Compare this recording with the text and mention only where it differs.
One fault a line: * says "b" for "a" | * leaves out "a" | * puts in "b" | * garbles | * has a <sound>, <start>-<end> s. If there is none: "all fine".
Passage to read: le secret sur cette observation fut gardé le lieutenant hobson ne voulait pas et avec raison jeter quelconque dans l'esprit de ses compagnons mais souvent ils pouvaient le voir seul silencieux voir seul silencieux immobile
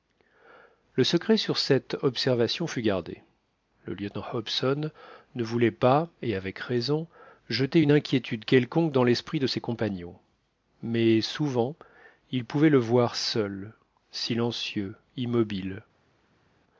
* puts in "une inquiétude"
* leaves out "voir seul silencieux"